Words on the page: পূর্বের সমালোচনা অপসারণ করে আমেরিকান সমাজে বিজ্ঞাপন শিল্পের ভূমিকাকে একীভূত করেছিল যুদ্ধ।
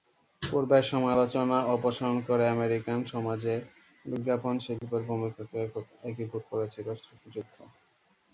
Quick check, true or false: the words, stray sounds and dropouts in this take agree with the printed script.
false